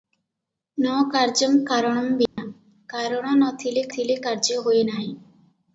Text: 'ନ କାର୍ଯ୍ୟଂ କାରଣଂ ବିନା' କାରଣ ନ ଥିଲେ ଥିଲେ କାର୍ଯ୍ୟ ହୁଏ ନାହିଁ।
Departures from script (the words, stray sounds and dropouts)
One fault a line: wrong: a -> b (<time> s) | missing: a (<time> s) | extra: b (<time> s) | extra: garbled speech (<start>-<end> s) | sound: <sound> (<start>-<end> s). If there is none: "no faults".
sound: dropout (2.3-2.4 s)